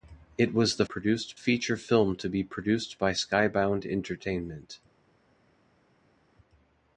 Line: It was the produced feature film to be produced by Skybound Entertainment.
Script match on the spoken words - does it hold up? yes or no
yes